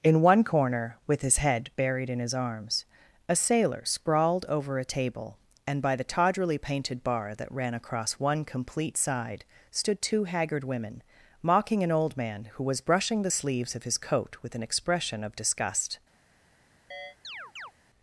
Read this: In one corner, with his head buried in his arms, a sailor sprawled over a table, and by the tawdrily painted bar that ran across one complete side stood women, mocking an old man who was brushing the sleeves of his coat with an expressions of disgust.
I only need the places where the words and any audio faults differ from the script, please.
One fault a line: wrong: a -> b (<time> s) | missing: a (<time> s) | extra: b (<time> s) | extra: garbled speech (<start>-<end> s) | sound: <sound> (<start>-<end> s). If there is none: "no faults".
extra: two haggard (10.0 s)
wrong: expressions -> expression (14.6 s)
sound: chirp (16.9-17.7 s)